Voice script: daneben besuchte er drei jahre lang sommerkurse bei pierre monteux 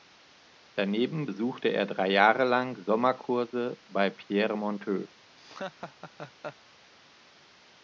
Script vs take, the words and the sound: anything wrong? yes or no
yes